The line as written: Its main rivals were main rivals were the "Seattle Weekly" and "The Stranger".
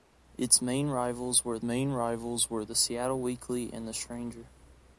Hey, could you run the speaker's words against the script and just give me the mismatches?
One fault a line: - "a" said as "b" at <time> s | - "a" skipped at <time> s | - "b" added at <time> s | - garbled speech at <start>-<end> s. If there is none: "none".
none